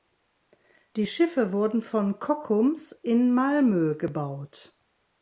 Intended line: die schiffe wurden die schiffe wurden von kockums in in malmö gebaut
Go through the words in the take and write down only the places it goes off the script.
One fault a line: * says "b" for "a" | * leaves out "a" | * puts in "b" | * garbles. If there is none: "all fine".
* leaves out "die schiffe wurden"
* leaves out "in"